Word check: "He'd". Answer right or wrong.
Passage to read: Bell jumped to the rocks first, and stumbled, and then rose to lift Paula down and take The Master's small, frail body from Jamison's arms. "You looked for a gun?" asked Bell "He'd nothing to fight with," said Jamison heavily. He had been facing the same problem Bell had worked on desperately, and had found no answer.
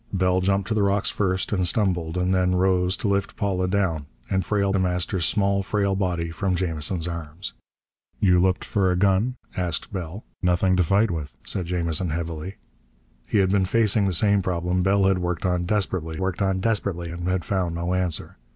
wrong